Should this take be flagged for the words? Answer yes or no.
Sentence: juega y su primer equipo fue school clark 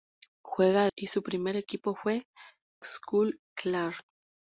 no